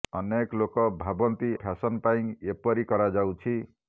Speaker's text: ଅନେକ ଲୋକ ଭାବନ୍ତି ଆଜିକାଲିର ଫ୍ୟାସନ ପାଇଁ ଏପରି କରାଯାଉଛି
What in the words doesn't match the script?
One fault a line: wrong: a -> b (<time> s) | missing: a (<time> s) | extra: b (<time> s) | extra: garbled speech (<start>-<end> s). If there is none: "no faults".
missing: ଆଜିକାଲିର (1.5 s)